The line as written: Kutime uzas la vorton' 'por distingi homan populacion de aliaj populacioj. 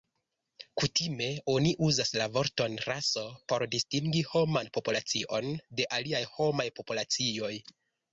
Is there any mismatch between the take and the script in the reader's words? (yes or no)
yes